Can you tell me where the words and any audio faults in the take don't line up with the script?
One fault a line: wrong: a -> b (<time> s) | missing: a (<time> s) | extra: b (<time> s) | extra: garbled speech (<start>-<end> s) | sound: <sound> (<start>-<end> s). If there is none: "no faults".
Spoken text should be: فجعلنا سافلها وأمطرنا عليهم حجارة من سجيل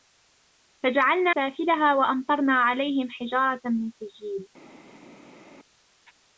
no faults